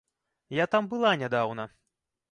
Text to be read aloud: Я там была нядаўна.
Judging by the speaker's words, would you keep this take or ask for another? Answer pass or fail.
pass